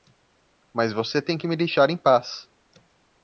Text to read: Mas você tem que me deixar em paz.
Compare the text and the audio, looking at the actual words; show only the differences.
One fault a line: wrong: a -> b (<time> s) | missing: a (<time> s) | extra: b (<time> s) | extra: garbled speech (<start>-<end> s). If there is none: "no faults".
no faults